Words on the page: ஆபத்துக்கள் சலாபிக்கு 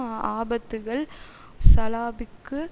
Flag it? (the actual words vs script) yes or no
no